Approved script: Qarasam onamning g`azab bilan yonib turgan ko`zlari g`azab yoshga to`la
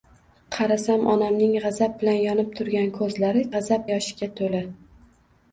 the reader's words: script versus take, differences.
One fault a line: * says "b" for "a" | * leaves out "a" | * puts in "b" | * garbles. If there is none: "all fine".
all fine